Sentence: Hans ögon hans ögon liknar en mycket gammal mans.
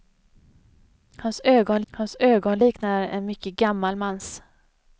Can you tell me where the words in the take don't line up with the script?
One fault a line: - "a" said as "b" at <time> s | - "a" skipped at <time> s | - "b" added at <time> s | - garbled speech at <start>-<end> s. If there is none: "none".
none